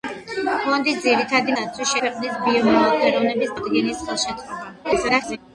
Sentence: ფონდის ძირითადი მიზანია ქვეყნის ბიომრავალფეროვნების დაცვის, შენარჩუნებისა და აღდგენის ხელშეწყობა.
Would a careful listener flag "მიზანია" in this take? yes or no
yes